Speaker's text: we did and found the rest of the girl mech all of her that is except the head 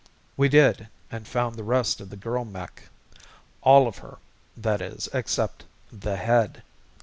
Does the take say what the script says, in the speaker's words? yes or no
yes